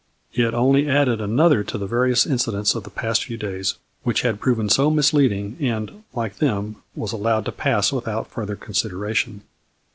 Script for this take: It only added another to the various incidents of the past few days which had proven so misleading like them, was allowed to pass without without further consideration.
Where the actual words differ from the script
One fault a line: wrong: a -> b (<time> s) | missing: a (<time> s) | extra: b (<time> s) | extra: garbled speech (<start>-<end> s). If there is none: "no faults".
extra: and (5.6 s)
missing: without (8.3 s)